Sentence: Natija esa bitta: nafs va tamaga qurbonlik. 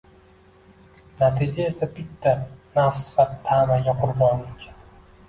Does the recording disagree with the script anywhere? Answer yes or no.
no